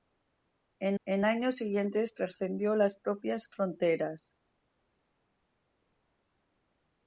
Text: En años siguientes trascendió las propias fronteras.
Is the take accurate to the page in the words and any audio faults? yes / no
no